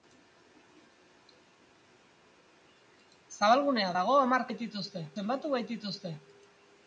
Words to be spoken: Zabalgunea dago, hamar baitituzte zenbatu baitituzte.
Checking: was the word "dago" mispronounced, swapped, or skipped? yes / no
no